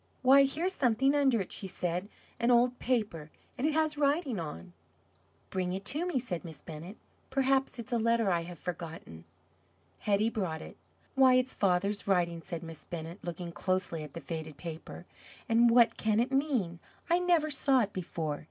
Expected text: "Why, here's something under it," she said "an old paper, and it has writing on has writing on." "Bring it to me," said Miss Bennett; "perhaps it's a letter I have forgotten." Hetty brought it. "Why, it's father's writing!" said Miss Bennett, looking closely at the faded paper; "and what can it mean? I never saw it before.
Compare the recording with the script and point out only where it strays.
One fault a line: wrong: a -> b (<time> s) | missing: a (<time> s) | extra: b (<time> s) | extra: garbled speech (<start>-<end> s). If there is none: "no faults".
missing: has writing on (4.7 s)